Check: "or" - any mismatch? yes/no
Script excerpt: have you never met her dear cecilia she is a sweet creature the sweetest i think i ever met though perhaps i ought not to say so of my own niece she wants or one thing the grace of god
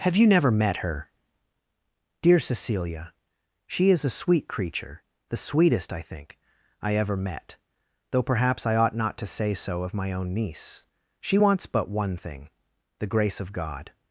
yes